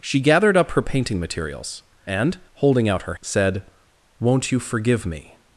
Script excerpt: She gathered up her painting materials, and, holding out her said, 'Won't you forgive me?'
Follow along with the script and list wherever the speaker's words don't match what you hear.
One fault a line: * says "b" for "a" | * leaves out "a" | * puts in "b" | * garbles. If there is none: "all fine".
all fine